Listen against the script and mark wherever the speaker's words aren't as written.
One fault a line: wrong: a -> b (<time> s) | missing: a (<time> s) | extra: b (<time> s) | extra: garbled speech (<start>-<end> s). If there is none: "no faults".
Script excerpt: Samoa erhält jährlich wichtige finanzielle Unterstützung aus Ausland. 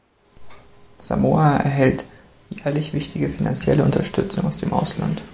extra: dem (4.6 s)